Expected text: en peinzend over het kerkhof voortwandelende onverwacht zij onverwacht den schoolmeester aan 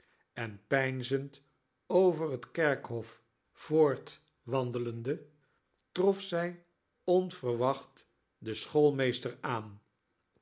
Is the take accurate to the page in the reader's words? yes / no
no